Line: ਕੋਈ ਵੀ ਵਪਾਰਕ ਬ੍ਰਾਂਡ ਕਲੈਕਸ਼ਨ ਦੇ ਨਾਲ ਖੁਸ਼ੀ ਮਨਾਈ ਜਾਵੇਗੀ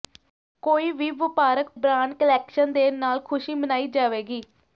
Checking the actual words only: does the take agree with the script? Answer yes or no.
yes